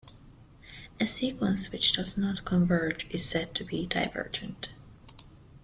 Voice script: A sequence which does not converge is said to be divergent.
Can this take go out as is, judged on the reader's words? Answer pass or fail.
pass